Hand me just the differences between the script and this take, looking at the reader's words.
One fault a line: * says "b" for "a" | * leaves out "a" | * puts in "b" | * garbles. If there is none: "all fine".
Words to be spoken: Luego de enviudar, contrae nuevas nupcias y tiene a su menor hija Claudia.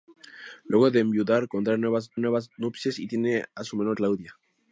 * puts in "nuevas"
* leaves out "hija"